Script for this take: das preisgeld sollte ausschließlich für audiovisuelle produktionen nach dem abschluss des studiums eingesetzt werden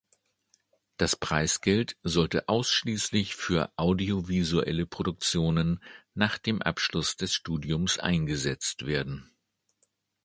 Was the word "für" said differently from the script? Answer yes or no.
no